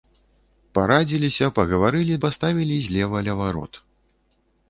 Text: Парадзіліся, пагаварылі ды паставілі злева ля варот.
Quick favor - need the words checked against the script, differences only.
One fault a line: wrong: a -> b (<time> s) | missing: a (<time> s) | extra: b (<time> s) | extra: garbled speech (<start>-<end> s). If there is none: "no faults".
missing: ды (2.1 s)